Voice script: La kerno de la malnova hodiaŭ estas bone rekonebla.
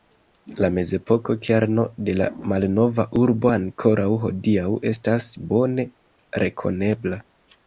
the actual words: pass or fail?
fail